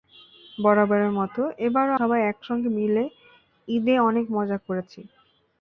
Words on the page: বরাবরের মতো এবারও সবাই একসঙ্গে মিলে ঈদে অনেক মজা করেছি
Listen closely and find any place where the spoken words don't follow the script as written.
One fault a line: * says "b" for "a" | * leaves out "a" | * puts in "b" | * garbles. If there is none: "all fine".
all fine